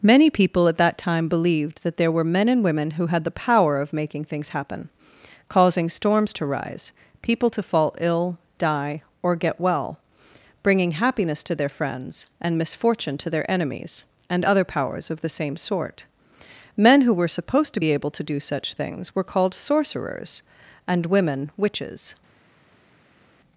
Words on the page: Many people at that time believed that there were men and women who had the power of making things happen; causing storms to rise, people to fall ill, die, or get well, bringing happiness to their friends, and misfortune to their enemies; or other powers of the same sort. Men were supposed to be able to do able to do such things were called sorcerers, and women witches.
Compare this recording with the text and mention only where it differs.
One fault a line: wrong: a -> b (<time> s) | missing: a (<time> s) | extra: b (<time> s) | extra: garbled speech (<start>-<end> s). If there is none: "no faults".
wrong: or -> and (14.3 s)
extra: who (17.0 s)
missing: able to do (18.4 s)